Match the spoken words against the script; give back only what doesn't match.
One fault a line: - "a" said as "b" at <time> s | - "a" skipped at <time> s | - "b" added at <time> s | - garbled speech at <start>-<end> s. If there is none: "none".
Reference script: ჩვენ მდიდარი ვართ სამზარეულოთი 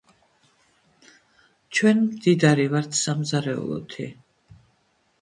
none